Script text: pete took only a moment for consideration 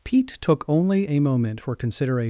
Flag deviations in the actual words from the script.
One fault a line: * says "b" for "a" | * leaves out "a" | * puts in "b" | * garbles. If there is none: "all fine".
all fine